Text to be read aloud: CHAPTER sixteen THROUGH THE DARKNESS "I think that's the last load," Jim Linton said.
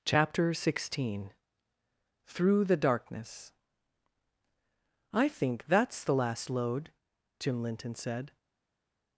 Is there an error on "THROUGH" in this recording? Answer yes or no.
no